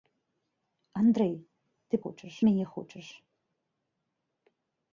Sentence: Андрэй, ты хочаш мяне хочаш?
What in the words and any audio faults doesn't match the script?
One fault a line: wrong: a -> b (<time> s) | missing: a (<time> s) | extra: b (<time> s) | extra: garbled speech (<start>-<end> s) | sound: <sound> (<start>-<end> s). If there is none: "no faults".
no faults